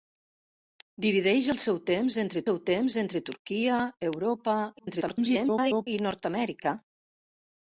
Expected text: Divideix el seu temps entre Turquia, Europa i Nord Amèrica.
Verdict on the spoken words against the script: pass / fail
fail